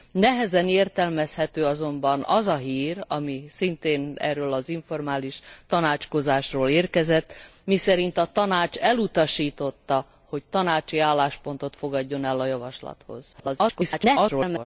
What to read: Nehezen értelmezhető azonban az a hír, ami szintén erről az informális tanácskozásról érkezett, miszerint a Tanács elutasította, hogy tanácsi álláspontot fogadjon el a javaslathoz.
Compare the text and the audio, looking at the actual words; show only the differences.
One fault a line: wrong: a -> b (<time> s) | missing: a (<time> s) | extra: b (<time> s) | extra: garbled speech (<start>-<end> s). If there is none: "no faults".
extra: garbled speech (13.3-14.7 s)